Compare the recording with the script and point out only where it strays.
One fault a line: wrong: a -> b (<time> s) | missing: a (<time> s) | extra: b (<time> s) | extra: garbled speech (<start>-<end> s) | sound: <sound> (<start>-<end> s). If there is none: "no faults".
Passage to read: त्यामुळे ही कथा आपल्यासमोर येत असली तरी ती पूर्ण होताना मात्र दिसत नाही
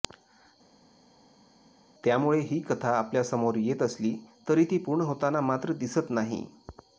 no faults